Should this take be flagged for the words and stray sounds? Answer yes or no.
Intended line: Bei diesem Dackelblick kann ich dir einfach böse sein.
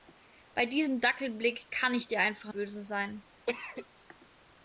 yes